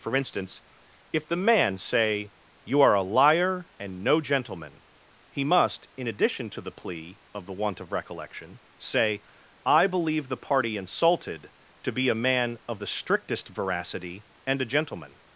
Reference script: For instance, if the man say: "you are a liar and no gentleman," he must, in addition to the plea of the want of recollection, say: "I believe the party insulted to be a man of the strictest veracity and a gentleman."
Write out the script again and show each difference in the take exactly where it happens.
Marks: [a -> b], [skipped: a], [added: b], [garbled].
For instance, if the man say: "you are a liar and no gentleman," he must, in addition to the plea of the want of recollection, say: "I believe the party insulted to be a man of the strictest veracity and a gentleman."